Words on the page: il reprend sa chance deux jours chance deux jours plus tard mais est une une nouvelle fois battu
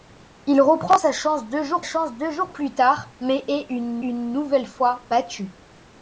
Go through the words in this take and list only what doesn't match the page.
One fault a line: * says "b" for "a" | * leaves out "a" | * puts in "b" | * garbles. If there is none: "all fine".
all fine